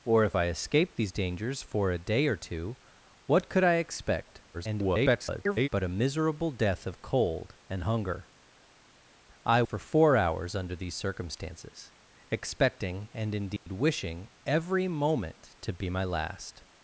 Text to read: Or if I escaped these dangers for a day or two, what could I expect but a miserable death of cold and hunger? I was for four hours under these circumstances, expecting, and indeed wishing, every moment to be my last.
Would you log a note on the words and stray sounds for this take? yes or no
yes